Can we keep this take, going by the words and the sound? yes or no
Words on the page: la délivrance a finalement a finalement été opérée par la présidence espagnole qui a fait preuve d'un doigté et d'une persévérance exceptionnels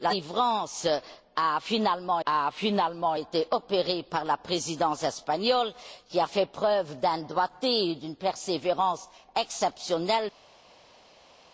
yes